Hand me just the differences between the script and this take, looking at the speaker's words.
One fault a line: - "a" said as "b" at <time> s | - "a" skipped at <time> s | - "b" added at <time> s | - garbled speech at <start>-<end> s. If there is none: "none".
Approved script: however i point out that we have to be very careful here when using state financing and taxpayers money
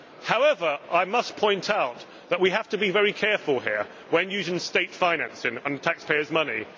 - "must" added at 1.1 s